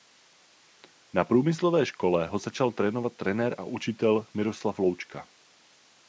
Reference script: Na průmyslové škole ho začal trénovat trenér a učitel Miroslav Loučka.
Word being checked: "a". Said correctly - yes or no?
yes